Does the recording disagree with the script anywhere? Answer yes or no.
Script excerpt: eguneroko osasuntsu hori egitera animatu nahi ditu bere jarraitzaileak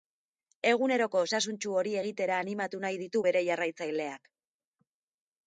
no